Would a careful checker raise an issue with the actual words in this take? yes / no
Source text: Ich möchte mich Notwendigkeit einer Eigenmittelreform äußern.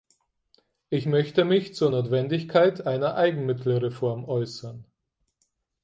yes